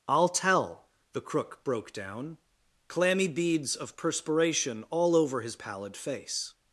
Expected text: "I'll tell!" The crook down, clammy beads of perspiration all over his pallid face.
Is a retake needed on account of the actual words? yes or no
yes